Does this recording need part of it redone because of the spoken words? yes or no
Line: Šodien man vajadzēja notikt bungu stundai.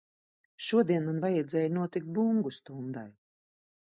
no